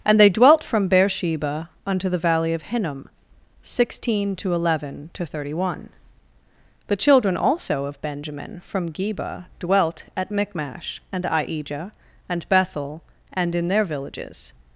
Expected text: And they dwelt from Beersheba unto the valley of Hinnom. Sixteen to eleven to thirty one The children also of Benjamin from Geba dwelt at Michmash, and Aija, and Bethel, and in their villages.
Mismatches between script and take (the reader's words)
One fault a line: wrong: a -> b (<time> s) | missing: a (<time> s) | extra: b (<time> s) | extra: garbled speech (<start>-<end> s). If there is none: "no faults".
no faults